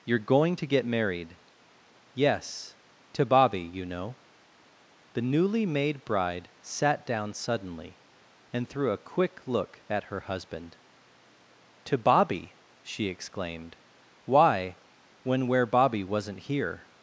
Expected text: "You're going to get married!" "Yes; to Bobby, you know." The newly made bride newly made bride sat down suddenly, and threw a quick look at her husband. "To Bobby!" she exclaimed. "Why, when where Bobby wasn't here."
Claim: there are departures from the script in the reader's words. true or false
true